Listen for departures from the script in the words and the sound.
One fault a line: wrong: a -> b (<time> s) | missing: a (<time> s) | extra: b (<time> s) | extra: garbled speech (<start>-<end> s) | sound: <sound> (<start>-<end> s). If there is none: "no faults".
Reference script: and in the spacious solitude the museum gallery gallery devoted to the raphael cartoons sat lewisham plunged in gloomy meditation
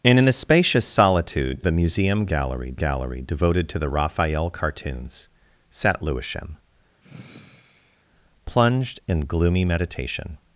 sound: sigh (7.0-8.0 s)